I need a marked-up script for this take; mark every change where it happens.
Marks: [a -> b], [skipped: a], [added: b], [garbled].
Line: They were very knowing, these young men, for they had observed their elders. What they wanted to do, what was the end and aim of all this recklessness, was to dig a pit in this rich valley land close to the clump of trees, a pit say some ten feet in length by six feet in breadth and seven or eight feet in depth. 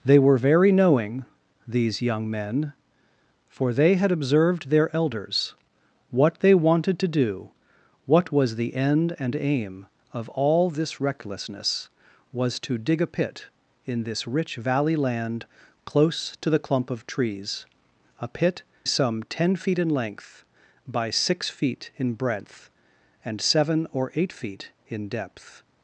They were very knowing, these young men, for they had observed their elders. What they wanted to do, what was the end and aim of all this recklessness, was to dig a pit in this rich valley land close to the clump of trees, a pit [skipped: say] some ten feet in length by six feet in breadth and seven or eight feet in depth.